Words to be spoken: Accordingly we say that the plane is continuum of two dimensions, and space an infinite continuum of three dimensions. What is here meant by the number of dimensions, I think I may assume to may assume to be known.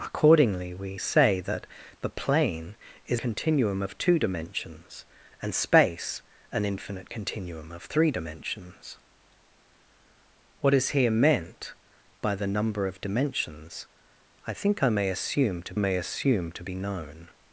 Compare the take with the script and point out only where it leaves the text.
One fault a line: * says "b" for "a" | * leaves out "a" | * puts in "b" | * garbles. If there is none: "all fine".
all fine